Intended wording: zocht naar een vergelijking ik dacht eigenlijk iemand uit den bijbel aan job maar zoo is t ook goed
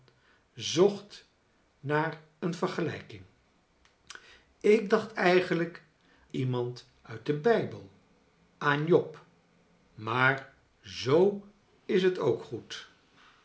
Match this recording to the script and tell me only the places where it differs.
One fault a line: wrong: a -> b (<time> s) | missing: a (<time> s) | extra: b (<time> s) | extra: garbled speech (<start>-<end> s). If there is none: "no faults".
no faults